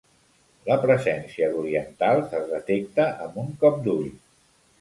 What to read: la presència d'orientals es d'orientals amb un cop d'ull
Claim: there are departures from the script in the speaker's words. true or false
true